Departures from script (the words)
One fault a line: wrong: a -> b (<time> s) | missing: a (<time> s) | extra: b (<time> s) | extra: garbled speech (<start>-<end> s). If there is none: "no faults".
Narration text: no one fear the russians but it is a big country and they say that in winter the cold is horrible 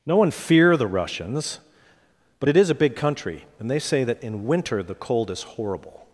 no faults